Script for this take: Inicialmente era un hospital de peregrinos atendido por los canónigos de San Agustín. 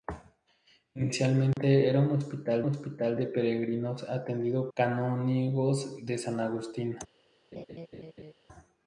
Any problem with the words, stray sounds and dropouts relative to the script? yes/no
yes